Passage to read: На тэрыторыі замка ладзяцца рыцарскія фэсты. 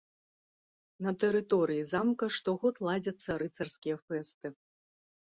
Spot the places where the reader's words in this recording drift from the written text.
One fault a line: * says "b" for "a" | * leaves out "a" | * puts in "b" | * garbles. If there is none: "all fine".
* puts in "штогод"